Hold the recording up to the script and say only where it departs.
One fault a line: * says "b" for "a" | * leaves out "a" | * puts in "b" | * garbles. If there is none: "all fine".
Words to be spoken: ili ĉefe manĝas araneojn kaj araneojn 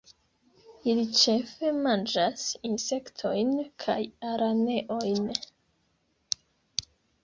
* says "insektojn" for "araneojn"